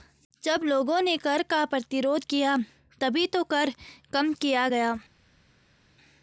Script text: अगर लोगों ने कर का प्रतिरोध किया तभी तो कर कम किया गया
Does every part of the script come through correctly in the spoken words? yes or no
no